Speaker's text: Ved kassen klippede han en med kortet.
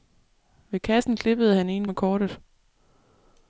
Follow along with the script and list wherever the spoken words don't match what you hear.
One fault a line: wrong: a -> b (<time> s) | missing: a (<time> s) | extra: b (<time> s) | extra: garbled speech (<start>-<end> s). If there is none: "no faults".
no faults